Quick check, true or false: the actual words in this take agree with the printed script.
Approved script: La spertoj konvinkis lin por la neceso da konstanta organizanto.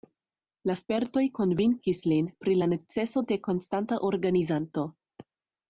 false